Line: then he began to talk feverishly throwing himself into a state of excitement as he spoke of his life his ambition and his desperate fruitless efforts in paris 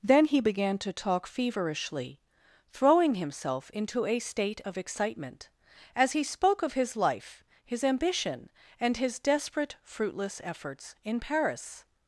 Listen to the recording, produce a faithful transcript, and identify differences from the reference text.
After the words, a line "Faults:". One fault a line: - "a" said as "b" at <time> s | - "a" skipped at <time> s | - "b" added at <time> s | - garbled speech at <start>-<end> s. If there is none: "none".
then he began to talk feverishly throwing himself into a state of excitement as he spoke of his life his ambition and his desperate fruitless efforts in paris
Faults:
none